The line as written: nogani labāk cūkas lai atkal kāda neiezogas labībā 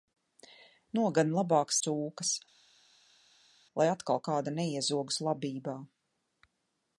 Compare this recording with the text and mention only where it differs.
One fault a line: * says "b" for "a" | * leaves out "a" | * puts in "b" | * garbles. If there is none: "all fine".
all fine